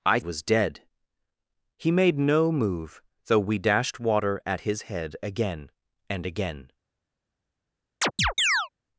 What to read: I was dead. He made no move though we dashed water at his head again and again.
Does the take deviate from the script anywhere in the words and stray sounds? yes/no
yes